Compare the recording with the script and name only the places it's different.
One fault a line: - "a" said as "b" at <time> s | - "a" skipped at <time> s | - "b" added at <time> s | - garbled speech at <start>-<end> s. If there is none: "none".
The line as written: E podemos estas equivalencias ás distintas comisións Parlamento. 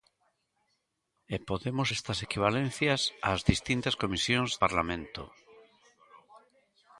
none